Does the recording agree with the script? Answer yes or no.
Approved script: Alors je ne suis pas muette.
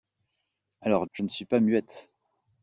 yes